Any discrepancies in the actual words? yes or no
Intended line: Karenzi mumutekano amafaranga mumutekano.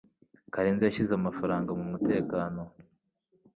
yes